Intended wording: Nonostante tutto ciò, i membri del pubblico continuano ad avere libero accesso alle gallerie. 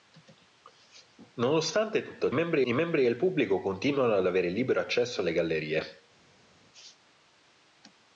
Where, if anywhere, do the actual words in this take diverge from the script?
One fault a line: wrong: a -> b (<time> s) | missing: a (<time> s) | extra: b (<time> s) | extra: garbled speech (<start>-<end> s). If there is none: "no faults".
wrong: ciò -> membri (2.3 s)